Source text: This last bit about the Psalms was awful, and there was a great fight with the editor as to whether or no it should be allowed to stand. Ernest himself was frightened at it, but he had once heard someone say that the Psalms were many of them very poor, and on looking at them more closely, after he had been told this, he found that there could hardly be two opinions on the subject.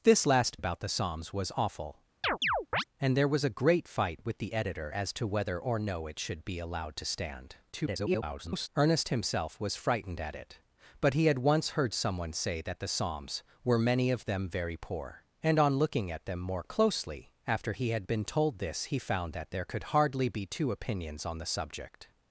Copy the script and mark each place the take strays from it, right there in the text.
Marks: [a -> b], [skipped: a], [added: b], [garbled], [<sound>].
This last [skipped: bit] about the Psalms was awful, [chirp] and there was a great fight with the editor as to whether or no it should be allowed to stand. [garbled] Ernest himself was frightened at it, but he had once heard someone say that the Psalms were many of them very poor, and on looking at them more closely, after he had been told this, he found that there could hardly be two opinions on the subject.